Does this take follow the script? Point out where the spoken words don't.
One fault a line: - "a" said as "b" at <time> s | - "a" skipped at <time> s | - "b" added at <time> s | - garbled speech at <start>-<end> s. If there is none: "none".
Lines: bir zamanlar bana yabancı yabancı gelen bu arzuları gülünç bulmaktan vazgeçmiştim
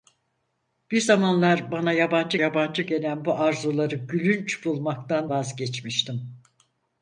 none